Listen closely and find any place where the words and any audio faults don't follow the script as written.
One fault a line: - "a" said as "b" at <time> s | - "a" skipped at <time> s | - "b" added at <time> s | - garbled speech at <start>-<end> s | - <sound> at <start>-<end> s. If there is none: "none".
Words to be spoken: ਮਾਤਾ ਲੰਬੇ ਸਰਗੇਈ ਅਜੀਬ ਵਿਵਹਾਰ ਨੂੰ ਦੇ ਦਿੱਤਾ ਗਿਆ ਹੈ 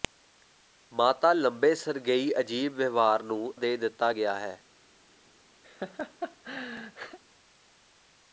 - laugh at 5.6-7.2 s